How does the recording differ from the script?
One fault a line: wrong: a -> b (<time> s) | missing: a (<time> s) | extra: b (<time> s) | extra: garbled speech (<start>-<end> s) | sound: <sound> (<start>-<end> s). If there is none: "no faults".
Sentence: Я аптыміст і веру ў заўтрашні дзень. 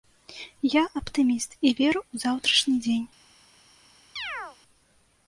sound: chirp (4.2-4.6 s)